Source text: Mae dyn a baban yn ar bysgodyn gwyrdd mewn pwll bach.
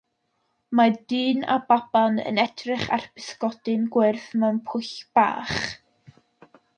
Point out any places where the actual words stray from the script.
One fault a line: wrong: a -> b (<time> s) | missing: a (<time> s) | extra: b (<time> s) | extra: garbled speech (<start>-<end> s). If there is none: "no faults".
extra: edrych (2.4 s)